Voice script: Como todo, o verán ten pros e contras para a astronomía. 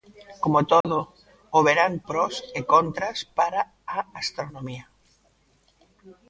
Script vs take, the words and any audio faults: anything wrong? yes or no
yes